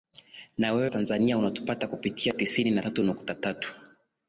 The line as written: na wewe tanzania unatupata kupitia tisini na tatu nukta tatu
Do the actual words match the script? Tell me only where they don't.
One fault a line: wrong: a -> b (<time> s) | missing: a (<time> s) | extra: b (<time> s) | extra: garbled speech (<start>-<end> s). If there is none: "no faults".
no faults